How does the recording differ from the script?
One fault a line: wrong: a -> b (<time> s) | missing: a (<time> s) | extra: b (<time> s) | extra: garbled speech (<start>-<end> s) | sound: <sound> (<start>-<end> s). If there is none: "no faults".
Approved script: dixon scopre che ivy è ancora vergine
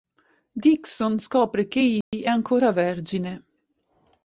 sound: dropout (2.0-2.1 s)